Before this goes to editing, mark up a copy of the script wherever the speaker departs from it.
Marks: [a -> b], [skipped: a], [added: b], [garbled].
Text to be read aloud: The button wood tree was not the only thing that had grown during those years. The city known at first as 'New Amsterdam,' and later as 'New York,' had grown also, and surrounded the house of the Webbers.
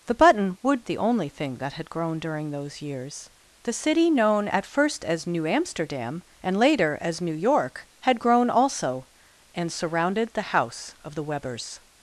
The button wood [skipped: tree was not] the only thing that had grown during those years. The city known at first as 'New Amsterdam,' and later as 'New York,' had grown also, and surrounded the house of the Webbers.